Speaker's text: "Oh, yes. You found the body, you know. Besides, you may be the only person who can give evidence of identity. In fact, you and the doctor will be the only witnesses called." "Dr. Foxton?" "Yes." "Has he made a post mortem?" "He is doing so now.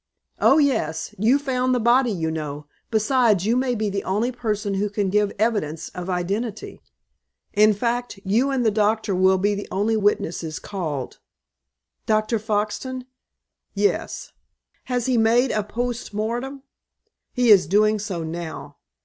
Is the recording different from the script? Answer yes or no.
no